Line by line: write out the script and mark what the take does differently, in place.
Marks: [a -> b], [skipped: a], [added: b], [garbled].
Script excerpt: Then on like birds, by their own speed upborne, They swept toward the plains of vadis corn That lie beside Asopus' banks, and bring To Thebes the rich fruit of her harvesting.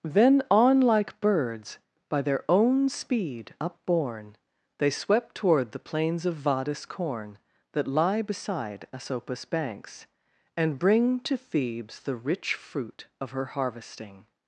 Then on like birds, by their own speed upborne, They swept toward the plains of vadis corn That lie beside Asopus' banks, and bring To Thebes the rich fruit of her harvesting.